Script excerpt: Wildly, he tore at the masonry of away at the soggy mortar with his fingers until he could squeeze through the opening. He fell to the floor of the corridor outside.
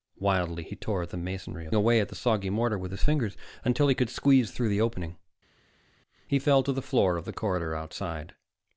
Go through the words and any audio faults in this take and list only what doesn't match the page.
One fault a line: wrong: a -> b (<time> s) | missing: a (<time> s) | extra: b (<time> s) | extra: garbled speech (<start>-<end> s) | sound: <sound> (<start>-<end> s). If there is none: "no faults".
no faults